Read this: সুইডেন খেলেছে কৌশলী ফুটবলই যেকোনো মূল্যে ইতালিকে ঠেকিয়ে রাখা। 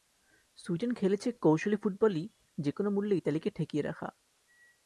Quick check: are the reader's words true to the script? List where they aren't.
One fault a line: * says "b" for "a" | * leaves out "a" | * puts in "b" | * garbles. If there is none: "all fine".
all fine